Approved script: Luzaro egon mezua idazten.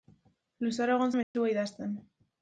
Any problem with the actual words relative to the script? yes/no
no